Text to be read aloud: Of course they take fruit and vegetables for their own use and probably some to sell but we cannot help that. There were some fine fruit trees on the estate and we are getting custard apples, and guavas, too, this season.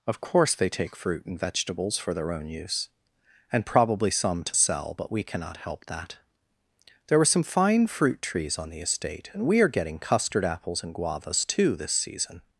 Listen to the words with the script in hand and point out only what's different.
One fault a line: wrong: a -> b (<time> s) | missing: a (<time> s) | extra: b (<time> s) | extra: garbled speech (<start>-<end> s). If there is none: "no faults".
no faults